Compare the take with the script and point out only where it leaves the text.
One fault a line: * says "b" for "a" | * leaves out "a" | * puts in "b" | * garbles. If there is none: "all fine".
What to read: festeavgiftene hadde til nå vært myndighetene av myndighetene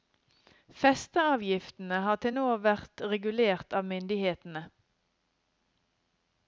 * says "har" for "hadde"
* says "regulert" for "myndighetene"